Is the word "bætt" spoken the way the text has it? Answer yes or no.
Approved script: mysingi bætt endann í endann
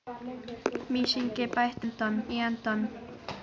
yes